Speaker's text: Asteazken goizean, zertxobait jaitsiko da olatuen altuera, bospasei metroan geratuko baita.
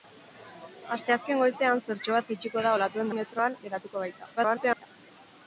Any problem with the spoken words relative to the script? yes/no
yes